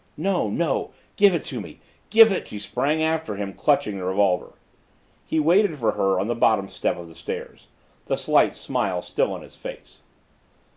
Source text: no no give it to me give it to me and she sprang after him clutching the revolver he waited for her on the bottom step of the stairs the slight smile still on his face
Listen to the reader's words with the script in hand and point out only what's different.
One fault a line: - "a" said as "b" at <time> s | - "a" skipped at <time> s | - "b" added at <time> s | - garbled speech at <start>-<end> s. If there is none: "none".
- "to me and" skipped at 2.5 s